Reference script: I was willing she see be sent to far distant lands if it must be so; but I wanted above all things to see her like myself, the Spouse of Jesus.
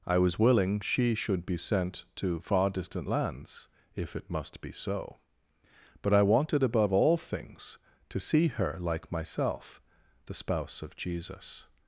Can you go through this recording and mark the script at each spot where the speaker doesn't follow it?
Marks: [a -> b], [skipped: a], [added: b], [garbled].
I was willing she [see -> should] be sent to far distant lands if it must be so; but I wanted above all things to see her like myself, the Spouse of Jesus.